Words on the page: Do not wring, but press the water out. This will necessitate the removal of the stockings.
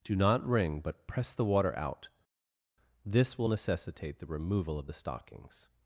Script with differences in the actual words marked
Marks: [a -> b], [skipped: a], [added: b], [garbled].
Do not wring, but press the water out. This will necessitate the removal of the stockings.